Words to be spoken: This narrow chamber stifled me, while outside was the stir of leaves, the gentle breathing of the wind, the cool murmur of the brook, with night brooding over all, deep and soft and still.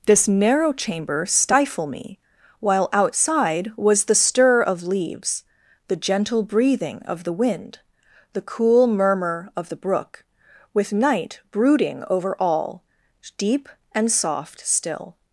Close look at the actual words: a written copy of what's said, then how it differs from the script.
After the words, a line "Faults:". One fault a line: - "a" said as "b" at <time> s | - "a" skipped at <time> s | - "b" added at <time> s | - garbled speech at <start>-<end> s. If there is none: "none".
This narrow chamber stifle me, while outside was the stir of leaves, the gentle breathing of the wind, the cool murmur of the brook, with night brooding over all, deep and soft still.
Faults:
- "stifled" said as "stifle" at 1.2 s
- "and" skipped at 14.7 s